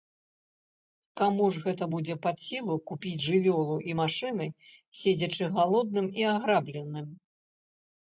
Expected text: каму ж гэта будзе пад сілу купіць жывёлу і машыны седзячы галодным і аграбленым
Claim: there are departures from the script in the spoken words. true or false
false